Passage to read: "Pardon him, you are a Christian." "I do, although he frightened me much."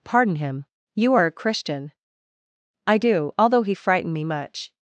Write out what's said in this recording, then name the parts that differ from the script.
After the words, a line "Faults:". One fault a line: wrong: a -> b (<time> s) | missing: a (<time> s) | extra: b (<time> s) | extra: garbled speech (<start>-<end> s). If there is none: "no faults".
"Pardon him, you are a Christian." "I do, although he frightened me much."
Faults:
no faults